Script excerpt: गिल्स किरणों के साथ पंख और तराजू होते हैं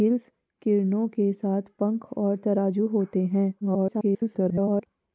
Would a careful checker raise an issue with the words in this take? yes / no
yes